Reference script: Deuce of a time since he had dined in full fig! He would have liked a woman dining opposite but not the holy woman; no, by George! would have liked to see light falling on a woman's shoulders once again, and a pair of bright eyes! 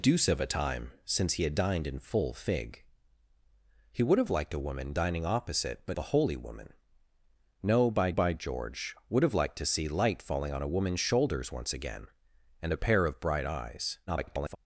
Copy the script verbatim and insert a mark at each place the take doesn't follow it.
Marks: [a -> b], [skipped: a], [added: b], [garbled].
Deuce of a time since he had dined in full fig! He would have liked a woman dining opposite but [skipped: not] the holy woman; no, by [added: by] George! would have liked to see light falling on a woman's shoulders once again, and a pair of bright eyes! [garbled]